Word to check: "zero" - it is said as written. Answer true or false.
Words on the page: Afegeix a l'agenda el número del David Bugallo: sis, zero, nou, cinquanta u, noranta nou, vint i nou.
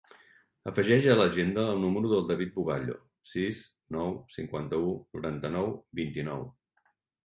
false